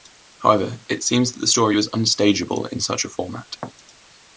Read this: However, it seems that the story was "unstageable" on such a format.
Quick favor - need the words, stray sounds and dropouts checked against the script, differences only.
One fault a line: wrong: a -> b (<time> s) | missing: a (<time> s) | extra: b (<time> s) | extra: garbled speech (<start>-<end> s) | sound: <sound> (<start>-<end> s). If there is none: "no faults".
wrong: on -> in (2.7 s)